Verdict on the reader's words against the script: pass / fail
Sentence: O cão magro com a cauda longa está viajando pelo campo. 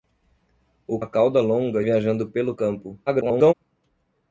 fail